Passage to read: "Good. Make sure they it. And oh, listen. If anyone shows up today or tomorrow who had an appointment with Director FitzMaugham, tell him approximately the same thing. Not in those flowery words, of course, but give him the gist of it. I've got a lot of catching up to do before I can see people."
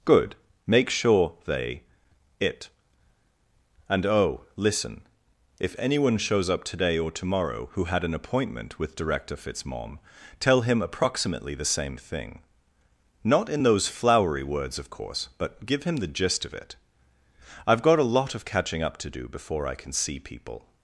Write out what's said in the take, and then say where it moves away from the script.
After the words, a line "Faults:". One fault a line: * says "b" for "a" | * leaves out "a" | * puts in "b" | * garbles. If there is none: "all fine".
"Good. Make sure they it. And oh, listen. If anyone shows up today or tomorrow who had an appointment with Director FitzMaugham, tell him approximately the same thing. Not in those flowery words, of course, but give him the gist of it. I've got a lot of catching up to do before I can see people."
Faults:
all fine